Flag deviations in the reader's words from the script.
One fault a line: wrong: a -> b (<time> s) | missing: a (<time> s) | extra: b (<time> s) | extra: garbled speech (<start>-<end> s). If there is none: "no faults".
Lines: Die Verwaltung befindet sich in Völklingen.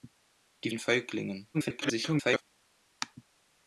missing: Verwaltung befindet sich (0.7 s)
extra: garbled speech (1.5-2.4 s)